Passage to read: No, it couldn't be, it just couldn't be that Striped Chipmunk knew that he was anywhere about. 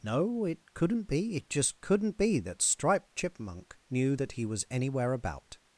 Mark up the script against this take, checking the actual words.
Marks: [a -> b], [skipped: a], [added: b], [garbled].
No, it couldn't be, it just couldn't be that Striped Chipmunk knew that he was anywhere about.